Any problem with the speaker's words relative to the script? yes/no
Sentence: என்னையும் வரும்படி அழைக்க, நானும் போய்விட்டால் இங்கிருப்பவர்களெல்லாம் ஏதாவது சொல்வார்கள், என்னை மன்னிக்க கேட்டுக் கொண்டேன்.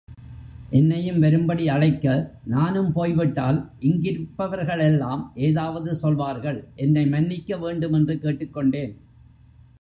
yes